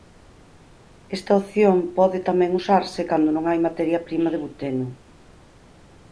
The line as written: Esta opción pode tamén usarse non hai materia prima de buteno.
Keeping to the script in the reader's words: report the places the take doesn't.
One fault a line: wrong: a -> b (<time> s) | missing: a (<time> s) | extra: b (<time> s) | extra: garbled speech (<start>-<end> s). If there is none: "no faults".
extra: cando (3.1 s)